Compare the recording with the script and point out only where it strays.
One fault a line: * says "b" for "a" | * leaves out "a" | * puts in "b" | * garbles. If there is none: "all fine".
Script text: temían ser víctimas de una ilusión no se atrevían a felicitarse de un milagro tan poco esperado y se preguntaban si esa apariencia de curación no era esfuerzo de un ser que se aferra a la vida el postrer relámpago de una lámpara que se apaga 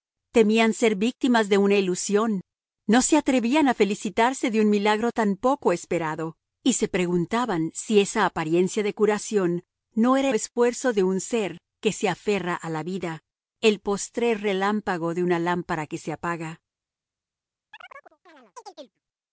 all fine